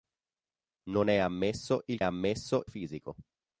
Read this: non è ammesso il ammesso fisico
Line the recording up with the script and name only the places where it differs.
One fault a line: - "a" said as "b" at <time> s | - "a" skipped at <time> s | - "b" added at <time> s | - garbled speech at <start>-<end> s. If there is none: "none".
none